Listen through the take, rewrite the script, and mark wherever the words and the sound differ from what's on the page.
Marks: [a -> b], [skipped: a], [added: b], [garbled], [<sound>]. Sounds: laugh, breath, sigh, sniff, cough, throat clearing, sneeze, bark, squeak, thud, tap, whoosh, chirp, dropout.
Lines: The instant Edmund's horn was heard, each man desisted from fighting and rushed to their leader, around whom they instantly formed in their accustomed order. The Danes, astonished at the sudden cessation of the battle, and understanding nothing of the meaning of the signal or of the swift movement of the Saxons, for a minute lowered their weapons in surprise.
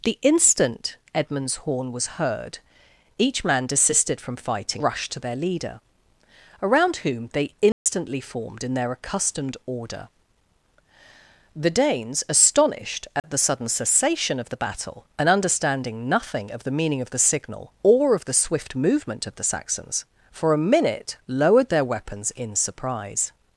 The instant Edmund's horn was heard, each man desisted from fighting [skipped: and] rushed to their leader, around whom they instantly [dropout] formed in their accustomed order. The Danes, astonished at [dropout] the sudden cessation of the battle, and understanding nothing of the meaning of the signal or of the swift movement of the Saxons, for a minute lowered their weapons in surprise.